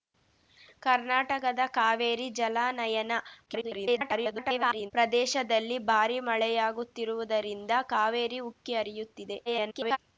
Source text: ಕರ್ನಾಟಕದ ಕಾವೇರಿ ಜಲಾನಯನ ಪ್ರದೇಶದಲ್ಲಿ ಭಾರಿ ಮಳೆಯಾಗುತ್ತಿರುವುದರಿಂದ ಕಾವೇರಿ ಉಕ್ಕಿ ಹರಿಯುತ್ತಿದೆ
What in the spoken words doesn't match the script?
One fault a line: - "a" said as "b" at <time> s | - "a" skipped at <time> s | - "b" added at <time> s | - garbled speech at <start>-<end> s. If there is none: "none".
- garbled speech at 3.5-4.9 s
- garbled speech at 9.5-10.0 s